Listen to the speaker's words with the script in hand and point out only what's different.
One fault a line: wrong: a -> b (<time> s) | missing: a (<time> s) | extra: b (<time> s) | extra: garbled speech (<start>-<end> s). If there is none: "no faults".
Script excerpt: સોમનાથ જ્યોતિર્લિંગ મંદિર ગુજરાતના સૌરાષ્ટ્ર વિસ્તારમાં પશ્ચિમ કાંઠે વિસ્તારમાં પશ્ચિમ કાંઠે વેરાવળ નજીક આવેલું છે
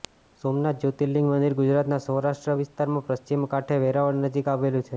missing: વિસ્તારમાં પશ્ચિમ કાંઠે (3.8 s)